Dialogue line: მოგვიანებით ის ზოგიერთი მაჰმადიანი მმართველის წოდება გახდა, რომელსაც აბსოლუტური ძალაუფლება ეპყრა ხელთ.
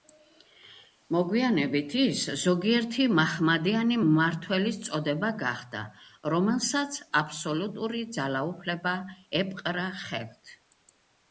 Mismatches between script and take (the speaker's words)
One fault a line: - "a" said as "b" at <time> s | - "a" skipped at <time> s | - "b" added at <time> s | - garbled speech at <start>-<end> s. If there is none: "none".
none